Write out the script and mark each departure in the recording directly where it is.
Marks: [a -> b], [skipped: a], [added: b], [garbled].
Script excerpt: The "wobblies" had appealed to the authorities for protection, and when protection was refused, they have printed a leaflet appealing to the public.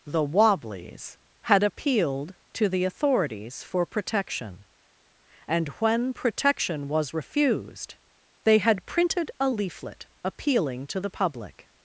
The "wobblies" had appealed to the authorities for protection, and when protection was refused, they [have -> had] printed a leaflet appealing to the public.